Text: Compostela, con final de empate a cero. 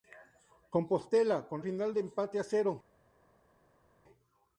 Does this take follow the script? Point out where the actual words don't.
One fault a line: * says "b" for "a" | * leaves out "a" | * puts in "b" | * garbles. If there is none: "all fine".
all fine